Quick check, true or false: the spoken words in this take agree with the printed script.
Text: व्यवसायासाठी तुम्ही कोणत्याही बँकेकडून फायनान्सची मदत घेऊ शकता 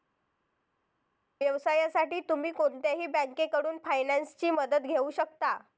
true